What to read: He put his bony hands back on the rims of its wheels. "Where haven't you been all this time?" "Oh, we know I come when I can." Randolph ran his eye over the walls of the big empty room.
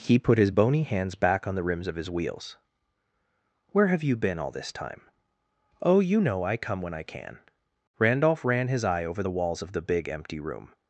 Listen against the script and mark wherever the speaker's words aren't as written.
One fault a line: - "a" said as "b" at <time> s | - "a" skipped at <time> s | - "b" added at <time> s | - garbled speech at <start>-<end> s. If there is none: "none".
- "its" said as "his" at 2.0 s
- "haven't" said as "have" at 3.9 s
- "we" said as "you" at 6.0 s